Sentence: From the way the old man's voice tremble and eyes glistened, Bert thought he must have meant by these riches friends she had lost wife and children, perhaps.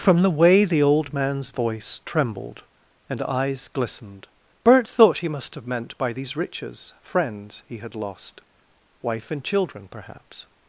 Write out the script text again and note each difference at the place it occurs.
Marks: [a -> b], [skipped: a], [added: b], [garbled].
From the way the old man's voice [tremble -> trembled] and eyes glistened, Bert thought he must have meant by these riches friends [she -> he] had lost wife and children, perhaps.